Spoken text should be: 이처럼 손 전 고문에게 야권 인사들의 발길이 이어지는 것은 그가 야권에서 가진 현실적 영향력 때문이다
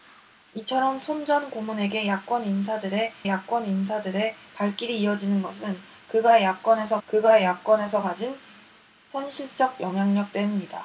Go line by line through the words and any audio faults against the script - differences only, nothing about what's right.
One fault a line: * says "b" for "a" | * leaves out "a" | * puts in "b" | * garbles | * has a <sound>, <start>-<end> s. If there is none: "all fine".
* puts in "야권 인사들의"
* puts in "그가 야권에서"